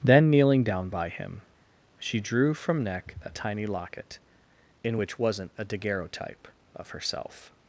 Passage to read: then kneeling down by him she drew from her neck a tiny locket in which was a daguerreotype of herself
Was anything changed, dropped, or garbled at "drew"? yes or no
no